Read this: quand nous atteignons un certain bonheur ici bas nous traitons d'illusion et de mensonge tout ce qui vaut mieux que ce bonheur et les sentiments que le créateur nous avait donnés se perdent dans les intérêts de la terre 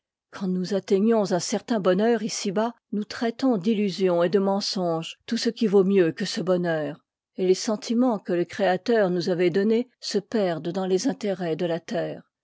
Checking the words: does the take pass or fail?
pass